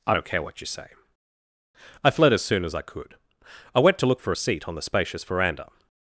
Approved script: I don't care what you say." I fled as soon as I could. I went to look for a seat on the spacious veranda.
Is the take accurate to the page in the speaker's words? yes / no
yes